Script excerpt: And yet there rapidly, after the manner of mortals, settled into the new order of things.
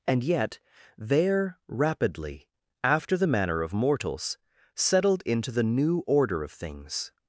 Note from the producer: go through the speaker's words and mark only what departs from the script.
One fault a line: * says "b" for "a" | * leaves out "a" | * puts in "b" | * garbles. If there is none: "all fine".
all fine